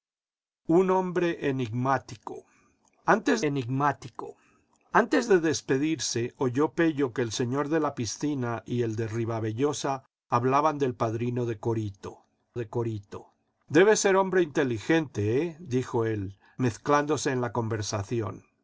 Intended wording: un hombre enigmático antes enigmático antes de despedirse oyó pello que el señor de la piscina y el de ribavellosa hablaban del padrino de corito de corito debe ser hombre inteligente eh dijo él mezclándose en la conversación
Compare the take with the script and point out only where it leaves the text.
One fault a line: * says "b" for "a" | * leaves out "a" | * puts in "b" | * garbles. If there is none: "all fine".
all fine